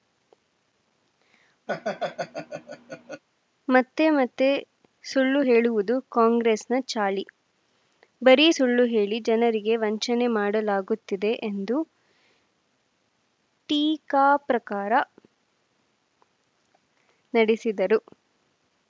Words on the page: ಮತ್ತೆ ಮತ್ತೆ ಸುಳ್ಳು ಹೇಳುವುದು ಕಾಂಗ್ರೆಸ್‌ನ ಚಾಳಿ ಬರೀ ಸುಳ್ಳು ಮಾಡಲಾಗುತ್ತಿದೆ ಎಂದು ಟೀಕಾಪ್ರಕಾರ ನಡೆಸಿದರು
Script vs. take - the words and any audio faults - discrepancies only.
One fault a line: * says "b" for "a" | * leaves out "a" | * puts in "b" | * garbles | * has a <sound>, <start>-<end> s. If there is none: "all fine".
* has a laugh, 1.7-3.2 s
* puts in "ಹೇಳಿ ಜನರಿಗೆ ವಂಚನೆ"